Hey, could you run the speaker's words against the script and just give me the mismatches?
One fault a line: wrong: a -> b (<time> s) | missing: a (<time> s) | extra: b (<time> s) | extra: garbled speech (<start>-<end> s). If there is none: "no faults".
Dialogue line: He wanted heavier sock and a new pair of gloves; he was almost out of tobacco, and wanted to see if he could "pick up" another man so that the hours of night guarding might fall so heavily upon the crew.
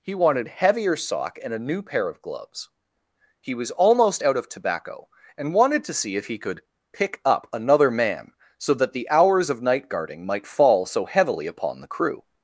no faults